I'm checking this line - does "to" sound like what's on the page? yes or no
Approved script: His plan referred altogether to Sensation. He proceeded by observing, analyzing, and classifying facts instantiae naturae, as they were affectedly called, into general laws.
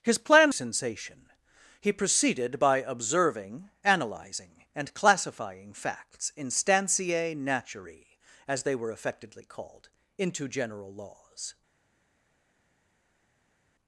no